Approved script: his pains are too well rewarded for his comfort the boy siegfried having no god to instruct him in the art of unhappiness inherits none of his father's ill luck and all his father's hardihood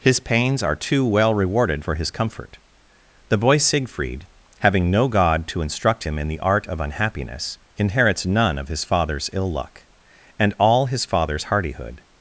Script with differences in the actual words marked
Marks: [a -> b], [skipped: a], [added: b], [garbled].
his pains are too well rewarded for his comfort the boy siegfried having no god to instruct him in the art of unhappiness inherits none of his father's ill luck and all his father's hardihood